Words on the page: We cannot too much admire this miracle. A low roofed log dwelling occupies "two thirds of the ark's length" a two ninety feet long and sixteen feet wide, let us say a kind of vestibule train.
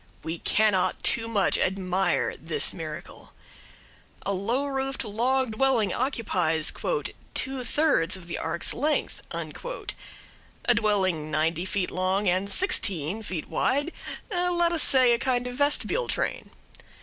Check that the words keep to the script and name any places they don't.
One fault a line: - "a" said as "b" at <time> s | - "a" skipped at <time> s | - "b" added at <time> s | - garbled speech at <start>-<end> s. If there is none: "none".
- "two" said as "dwelling" at 10.7 s